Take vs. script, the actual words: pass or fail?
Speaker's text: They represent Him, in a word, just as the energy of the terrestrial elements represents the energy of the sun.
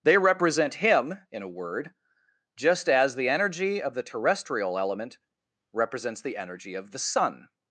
fail